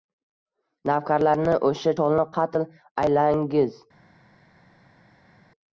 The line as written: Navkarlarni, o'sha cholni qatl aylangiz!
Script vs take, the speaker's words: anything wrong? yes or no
no